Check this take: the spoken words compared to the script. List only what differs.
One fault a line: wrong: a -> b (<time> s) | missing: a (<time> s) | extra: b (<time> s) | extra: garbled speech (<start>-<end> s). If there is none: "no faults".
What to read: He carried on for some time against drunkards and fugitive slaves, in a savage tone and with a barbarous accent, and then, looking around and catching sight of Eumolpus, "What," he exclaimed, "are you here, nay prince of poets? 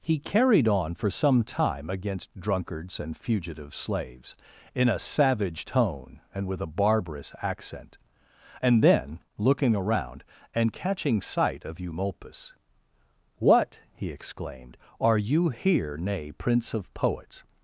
no faults